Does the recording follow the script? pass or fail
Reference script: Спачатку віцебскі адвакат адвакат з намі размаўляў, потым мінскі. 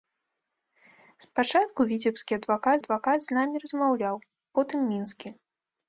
pass